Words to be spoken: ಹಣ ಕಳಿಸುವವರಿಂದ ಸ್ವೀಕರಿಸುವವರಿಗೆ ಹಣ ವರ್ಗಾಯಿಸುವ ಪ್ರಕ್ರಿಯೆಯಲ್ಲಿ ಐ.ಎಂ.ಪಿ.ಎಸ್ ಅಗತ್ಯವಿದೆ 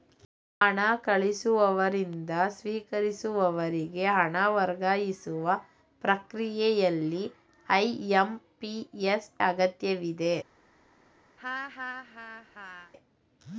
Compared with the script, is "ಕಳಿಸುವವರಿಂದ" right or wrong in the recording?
right